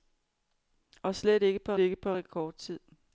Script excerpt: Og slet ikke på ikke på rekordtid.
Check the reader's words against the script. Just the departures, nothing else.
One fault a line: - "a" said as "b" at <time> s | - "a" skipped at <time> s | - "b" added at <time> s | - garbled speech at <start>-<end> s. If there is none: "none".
none